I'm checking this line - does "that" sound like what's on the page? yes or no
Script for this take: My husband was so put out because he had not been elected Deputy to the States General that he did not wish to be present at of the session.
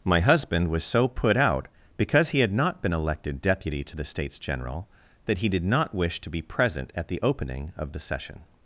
yes